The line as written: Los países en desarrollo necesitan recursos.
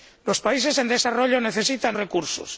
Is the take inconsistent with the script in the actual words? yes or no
no